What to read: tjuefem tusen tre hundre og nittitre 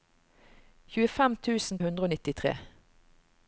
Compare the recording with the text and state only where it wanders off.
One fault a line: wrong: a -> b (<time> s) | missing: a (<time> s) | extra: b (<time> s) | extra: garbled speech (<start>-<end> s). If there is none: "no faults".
missing: tre (1.8 s)